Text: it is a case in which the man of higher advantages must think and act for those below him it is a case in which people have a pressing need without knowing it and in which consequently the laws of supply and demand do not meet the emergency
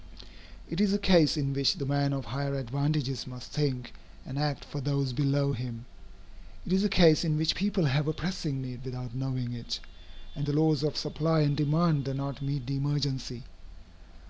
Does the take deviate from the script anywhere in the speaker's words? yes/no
yes